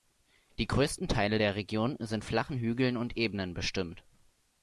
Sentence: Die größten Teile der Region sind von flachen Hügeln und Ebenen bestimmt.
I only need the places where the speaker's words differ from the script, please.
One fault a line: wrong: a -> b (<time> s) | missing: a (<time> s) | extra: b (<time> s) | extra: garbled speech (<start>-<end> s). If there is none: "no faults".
missing: von (2.2 s)